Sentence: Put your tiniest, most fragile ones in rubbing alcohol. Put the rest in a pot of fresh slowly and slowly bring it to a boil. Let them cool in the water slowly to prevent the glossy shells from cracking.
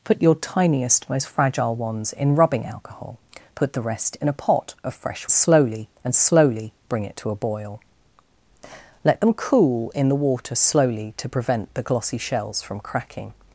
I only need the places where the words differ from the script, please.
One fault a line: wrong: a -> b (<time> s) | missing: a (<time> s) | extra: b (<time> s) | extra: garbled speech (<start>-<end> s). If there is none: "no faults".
no faults